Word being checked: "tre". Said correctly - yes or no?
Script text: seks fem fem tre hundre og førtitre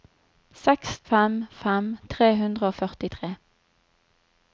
yes